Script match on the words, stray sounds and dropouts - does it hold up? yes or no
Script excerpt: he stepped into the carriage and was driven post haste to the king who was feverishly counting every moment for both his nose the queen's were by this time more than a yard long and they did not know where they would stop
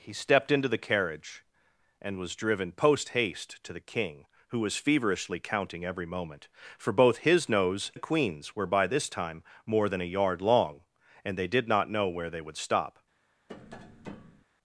no